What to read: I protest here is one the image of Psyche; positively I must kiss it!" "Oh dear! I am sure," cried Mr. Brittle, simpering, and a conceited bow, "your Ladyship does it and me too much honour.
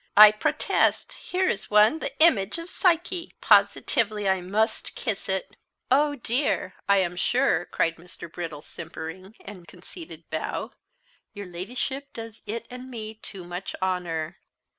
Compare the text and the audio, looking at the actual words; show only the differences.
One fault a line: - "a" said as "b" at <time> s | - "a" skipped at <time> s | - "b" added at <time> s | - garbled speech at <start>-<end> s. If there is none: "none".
none